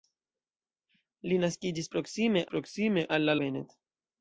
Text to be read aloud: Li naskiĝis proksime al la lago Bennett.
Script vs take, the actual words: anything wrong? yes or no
yes